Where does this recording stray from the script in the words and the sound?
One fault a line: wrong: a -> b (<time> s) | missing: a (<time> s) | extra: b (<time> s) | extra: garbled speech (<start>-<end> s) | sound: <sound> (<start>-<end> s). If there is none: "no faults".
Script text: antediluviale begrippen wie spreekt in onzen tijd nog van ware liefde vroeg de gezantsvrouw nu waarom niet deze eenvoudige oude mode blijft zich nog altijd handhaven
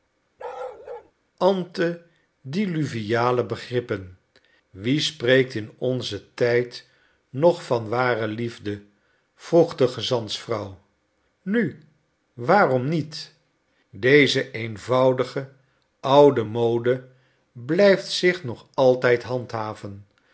sound: bark (0.4-1.1 s)